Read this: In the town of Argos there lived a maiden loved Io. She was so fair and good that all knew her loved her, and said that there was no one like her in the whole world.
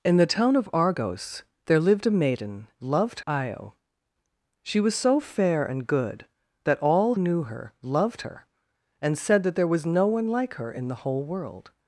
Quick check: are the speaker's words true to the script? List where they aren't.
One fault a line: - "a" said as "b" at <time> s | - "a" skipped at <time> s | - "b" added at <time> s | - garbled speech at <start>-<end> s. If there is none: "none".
none